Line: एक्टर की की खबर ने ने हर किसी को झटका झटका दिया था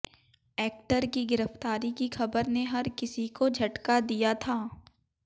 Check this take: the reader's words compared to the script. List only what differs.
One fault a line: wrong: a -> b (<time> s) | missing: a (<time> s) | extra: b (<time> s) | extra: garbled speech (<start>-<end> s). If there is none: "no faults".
extra: गिरफ्तारी (1.2 s)
missing: ने (2.6 s)
missing: झटका (4.0 s)